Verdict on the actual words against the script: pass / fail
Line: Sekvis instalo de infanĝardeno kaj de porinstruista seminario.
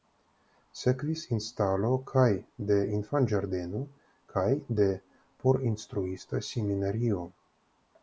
fail